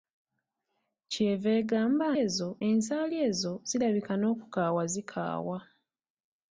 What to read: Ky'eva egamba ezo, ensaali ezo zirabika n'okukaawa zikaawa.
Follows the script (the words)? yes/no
yes